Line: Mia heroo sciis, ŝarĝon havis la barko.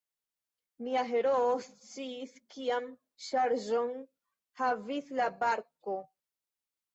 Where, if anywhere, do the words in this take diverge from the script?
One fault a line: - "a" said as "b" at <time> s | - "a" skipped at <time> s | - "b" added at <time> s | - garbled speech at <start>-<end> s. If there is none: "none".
- "kian" added at 2.6 s